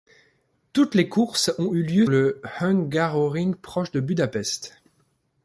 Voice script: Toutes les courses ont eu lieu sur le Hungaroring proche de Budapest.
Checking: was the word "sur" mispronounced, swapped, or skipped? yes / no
yes